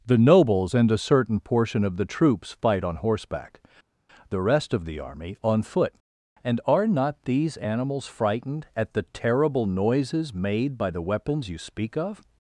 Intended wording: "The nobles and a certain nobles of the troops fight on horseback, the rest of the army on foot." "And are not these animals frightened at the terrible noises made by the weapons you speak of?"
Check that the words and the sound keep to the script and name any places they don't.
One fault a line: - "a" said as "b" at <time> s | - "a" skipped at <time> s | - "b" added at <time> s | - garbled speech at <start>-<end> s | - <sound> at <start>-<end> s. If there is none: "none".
- "nobles" said as "portion" at 1.4 s